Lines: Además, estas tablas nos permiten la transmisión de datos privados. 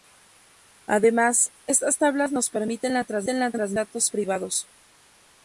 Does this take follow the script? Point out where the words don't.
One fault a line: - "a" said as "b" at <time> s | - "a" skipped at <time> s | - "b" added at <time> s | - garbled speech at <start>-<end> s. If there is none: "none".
none